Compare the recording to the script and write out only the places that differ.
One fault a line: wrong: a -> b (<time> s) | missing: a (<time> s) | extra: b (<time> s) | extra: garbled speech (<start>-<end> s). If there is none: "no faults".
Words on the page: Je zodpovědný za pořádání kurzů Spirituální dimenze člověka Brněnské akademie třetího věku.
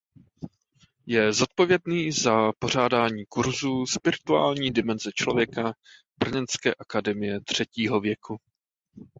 no faults